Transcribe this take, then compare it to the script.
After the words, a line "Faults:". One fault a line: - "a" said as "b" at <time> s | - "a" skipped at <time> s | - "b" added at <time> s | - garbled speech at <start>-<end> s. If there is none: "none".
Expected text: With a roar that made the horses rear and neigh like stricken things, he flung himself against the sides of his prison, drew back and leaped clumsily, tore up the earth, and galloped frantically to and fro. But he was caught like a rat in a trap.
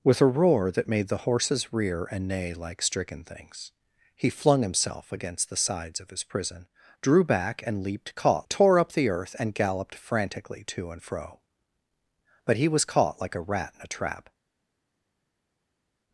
With a roar that made the horses rear and neigh like stricken things, he flung himself against the sides of his prison, drew back and leaped caught, tore up the earth, and galloped frantically to and fro. But he was caught like a rat in a trap.
Faults:
- "clumsily" said as "caught" at 8.1 s